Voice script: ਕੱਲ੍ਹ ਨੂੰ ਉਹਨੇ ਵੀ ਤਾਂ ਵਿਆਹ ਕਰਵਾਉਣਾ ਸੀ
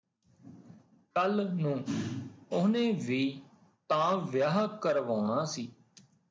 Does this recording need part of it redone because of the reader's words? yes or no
no